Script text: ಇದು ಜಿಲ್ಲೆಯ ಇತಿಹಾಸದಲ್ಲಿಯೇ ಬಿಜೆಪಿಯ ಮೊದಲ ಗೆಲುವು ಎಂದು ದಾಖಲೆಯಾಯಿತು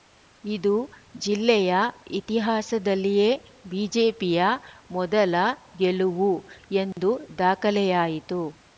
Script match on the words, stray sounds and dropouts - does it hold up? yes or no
no